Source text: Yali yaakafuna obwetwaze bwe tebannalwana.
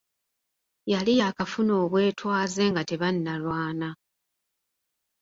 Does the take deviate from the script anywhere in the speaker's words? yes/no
yes